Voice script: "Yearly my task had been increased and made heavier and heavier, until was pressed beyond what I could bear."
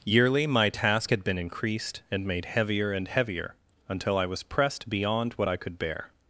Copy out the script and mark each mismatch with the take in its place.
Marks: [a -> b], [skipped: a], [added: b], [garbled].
"Yearly my task had been increased and made heavier and heavier, until [added: I] was pressed beyond what I could bear."